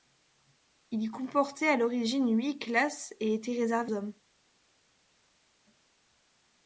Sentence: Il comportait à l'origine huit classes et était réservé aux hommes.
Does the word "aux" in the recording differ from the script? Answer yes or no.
yes